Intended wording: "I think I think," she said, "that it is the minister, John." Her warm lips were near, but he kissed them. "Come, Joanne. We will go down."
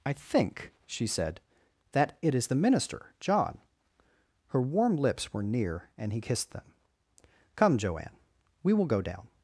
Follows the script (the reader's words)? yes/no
no